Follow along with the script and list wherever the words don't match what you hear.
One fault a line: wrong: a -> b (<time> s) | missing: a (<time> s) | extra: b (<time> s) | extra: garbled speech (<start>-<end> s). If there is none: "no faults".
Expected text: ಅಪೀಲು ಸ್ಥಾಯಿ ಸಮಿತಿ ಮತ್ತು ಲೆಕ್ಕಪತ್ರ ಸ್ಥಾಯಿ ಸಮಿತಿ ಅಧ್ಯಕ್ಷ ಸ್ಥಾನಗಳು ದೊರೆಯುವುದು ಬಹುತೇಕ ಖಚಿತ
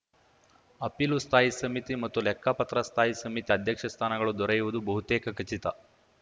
no faults